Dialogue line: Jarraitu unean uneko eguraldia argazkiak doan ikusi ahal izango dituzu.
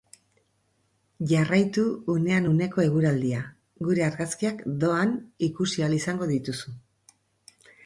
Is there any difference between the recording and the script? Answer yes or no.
yes